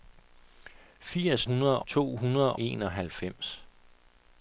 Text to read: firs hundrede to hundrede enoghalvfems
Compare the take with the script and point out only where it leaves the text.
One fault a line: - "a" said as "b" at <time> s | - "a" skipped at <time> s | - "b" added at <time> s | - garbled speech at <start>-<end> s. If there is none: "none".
none